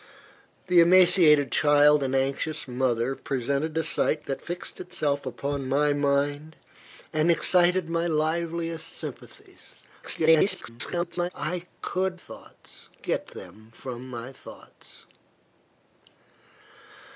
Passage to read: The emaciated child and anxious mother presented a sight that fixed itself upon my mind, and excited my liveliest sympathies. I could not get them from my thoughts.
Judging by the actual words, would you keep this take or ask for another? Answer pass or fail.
fail